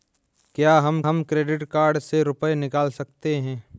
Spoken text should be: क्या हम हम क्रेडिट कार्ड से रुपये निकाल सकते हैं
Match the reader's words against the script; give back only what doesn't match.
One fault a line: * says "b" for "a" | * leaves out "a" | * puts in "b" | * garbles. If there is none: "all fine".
all fine